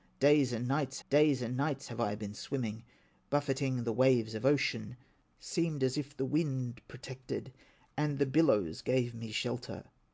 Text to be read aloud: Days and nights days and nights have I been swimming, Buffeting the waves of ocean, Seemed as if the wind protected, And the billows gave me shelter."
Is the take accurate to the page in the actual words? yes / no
yes